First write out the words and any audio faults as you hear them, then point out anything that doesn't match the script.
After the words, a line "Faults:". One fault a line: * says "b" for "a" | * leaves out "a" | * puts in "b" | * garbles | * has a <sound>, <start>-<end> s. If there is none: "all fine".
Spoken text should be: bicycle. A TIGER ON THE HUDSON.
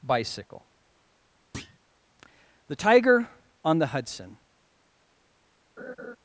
bicycle. THE TIGER ON THE HUDSON.
Faults:
* has a thud, 1.5-1.8 s
* says "THE" for "A"
* has a laugh, 5.8-6.2 s